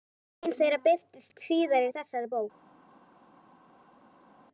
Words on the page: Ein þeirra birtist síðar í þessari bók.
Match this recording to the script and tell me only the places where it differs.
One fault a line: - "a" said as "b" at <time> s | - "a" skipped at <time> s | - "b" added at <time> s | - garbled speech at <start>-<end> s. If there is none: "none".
none